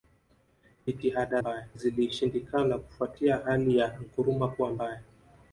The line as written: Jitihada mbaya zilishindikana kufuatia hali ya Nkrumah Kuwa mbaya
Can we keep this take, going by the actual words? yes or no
yes